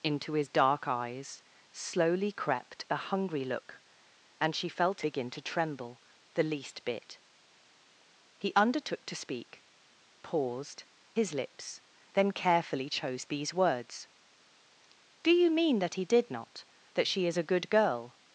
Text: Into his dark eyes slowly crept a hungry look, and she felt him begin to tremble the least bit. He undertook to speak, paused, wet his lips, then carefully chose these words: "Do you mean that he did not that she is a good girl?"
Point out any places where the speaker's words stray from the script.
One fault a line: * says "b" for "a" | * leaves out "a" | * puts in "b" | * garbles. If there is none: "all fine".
* leaves out "him"
* leaves out "wet"